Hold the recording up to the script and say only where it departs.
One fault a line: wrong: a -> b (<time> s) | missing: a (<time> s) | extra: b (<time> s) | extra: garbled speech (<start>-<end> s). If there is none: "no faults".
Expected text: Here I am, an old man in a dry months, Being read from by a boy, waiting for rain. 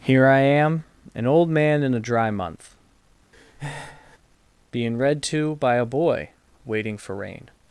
wrong: months -> month (2.3 s)
wrong: from -> to (5.2 s)